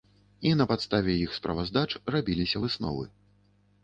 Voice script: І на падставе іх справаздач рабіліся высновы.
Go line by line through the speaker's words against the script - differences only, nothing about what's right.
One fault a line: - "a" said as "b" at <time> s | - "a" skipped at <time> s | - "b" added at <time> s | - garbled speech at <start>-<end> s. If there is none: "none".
none